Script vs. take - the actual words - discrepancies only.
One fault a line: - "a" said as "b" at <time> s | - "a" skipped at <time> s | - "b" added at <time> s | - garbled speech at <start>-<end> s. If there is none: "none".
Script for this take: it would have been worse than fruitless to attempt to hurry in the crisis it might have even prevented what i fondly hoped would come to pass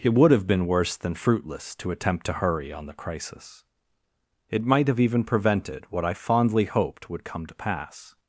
- "in" said as "on" at 2.7 s